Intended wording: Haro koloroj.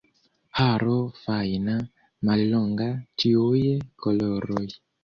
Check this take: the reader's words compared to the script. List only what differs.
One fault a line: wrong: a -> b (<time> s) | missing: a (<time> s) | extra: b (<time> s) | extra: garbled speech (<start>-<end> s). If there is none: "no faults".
extra: fajna mallonga ĉiuj (1.2 s)